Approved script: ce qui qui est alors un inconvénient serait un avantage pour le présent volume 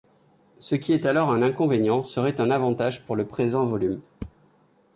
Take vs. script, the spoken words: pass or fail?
fail